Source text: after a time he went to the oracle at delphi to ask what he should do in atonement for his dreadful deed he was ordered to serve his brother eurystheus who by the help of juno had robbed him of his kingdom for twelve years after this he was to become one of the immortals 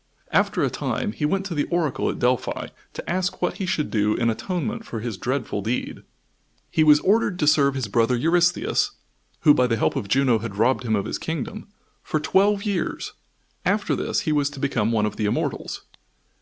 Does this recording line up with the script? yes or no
yes